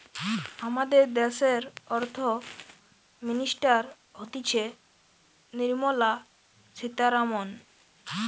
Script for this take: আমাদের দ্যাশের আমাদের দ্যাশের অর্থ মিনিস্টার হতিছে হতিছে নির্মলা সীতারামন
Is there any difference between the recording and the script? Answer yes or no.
yes